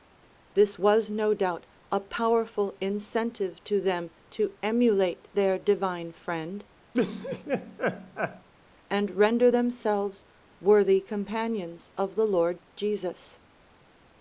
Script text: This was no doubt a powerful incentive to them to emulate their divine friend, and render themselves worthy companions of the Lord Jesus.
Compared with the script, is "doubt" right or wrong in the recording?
right